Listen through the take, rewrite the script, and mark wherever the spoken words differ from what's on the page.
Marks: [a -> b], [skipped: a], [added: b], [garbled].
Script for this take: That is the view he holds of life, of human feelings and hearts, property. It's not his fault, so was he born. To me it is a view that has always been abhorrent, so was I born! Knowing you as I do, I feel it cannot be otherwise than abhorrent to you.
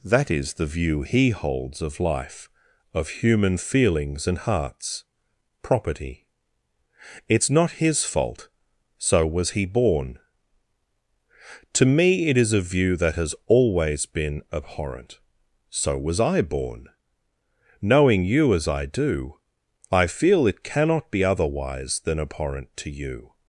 That is the view he holds of life, of human feelings and hearts, property. It's not his fault, so was he born. To me it is a view that has always been abhorrent, so was I born! Knowing you as I do, I feel it cannot be otherwise than abhorrent to you.